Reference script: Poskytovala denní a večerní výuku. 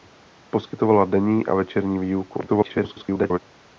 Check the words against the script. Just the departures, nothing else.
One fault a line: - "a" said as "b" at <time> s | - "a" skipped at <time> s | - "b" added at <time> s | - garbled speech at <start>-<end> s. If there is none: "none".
- garbled speech at 2.5-3.4 s